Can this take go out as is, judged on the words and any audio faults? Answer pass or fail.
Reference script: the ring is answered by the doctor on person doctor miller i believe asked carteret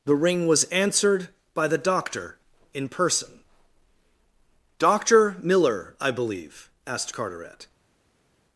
fail